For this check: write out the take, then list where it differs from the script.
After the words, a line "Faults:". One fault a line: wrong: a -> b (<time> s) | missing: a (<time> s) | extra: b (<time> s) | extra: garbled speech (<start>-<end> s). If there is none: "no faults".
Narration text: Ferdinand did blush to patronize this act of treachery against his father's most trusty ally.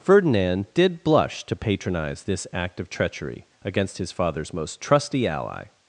Ferdinand did blush to patronize this act of treachery against his father's most trusty ally.
Faults:
no faults